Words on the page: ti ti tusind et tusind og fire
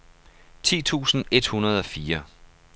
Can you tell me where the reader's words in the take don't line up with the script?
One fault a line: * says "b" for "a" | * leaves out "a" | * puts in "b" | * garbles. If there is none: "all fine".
* leaves out "ti"
* says "hundrede" for "tusind"